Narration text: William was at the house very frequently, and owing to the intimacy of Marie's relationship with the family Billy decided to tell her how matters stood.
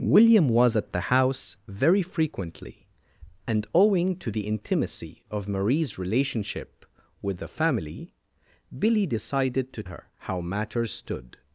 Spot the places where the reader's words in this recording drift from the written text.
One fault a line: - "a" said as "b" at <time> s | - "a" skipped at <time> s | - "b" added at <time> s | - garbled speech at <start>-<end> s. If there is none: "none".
- "tell" skipped at 9.8 s